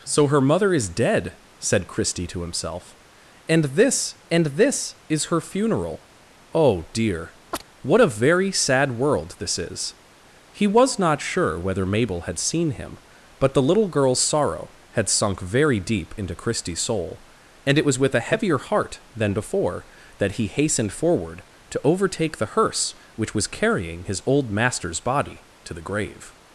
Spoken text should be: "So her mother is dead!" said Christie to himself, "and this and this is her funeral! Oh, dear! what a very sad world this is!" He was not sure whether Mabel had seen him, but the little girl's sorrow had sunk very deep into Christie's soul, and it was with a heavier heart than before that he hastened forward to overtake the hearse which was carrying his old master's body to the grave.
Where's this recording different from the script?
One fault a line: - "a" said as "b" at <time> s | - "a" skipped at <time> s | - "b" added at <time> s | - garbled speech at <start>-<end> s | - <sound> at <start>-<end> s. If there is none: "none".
- chirp at 7.5-7.6 s